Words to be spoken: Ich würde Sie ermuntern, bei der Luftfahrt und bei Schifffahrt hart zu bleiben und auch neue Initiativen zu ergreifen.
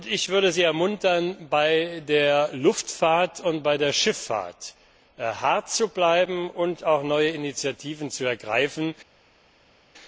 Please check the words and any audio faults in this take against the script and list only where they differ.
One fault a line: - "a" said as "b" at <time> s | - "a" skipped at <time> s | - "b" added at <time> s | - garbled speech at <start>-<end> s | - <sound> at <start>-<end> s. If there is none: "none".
- "der" added at 3.8 s